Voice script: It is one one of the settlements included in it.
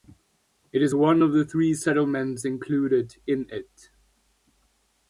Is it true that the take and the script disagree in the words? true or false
true